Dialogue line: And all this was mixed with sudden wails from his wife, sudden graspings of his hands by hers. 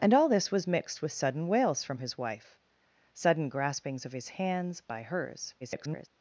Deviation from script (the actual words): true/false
true